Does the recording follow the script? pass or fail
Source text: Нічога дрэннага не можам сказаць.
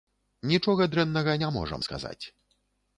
pass